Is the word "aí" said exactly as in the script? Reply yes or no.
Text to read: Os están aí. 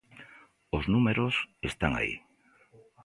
yes